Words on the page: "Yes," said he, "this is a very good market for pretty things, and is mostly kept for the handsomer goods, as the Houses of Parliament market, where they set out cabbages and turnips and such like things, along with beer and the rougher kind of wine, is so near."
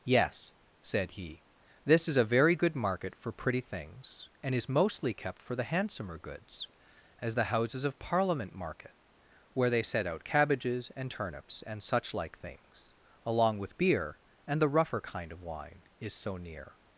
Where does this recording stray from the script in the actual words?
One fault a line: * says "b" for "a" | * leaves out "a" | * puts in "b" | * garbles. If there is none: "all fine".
all fine